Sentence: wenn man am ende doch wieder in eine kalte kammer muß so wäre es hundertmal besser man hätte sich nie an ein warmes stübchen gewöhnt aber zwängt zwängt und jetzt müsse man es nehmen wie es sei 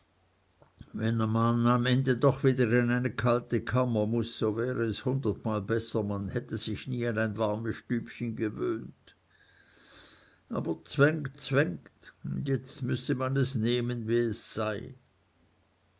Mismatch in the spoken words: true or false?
false